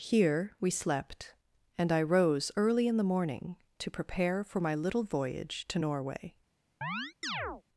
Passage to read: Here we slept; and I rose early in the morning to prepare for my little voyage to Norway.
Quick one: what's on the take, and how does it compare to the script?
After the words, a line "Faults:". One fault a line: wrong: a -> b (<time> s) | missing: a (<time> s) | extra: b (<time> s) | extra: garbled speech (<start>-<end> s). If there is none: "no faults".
Here we slept; and I rose early in the morning to prepare for my little voyage to Norway.
Faults:
no faults